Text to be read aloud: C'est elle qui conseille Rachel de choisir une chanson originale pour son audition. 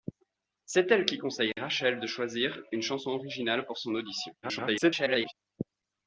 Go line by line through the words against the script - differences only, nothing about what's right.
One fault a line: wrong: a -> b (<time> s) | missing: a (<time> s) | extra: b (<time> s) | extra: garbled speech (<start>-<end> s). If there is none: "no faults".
extra: garbled speech (4.4-5.3 s)